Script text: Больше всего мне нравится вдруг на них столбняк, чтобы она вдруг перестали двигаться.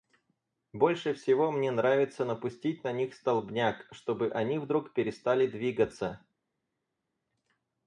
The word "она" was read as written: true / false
false